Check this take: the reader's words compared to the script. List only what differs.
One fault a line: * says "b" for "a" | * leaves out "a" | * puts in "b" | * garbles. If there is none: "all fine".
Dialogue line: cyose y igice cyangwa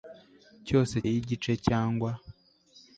all fine